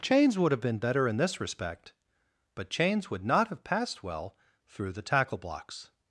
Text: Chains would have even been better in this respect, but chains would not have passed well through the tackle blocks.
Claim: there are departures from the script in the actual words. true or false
true